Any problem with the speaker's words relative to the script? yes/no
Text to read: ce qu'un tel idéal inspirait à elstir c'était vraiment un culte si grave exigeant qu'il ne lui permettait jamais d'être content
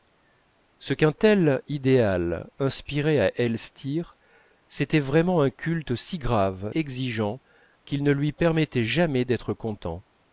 no